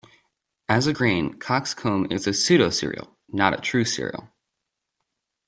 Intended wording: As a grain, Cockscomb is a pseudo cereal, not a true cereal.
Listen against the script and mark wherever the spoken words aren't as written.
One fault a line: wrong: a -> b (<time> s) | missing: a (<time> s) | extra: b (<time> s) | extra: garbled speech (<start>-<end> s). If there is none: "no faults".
no faults